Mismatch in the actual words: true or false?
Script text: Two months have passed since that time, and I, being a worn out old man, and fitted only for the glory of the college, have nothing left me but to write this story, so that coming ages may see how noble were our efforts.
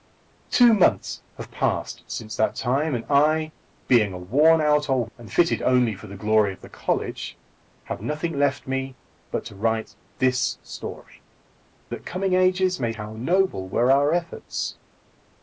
true